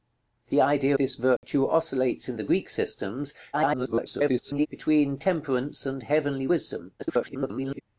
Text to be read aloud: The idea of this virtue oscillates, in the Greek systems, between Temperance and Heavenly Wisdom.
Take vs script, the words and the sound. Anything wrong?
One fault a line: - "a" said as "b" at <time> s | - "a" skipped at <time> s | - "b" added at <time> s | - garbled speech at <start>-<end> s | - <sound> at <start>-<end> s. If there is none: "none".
- "of" skipped at 1.0 s
- dropout at 1.4-1.4 s
- garbled speech at 3.5-4.7 s
- garbled speech at 7.0-7.8 s